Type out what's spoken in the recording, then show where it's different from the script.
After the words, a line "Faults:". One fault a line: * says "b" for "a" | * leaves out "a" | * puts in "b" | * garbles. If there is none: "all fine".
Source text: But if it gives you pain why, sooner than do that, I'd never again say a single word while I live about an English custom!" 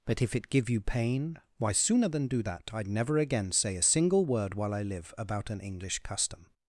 But if it give you pain why, sooner than do that, I'd never again say a single word while I live about an English custom!"
Faults:
* says "give" for "gives"